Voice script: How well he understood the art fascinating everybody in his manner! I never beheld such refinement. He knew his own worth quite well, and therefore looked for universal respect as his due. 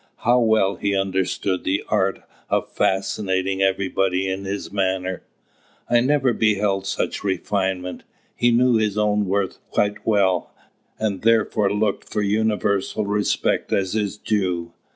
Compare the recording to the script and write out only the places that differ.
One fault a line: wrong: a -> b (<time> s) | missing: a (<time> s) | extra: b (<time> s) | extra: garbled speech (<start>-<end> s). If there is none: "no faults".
extra: of (2.5 s)